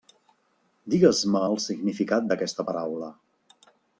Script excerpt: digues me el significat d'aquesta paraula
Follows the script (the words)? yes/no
yes